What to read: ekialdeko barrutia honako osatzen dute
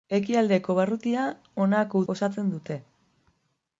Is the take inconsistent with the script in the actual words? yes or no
no